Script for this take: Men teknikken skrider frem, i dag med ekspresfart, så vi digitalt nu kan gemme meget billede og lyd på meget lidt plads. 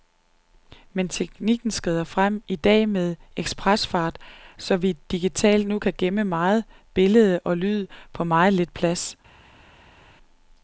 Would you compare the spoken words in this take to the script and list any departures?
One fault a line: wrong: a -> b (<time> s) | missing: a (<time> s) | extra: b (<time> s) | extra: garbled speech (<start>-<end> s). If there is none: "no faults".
no faults